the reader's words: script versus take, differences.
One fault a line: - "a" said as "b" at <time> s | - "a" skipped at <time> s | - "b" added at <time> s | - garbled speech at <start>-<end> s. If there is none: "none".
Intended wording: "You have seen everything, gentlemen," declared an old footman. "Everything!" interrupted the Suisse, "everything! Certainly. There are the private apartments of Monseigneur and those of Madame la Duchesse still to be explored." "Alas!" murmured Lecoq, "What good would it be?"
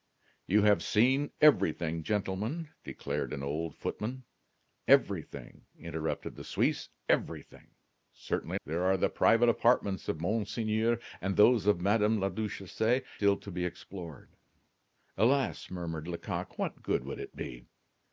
none